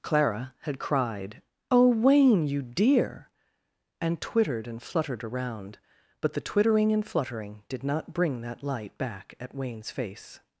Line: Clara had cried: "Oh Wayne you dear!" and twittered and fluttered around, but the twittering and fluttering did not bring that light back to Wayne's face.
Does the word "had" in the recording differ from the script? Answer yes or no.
no